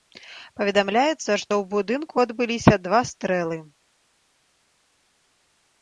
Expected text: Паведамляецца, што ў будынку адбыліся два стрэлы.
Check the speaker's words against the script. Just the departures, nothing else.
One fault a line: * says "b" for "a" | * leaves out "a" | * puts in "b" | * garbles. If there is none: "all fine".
all fine